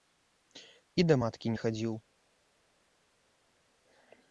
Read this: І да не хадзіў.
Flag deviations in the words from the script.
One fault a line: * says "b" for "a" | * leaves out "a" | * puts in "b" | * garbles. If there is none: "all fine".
* puts in "маткі"